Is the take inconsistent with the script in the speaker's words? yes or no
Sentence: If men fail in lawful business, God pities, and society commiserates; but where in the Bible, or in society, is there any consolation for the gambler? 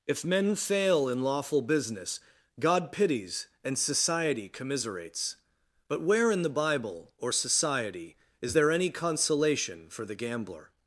yes